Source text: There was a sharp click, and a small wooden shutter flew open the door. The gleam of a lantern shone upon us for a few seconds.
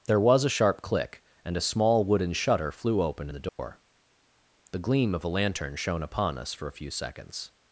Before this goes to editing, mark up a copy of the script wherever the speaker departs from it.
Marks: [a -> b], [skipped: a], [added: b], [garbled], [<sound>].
There was a sharp click, and a small wooden shutter flew open the door. [dropout] The gleam of a lantern shone upon us for a few seconds.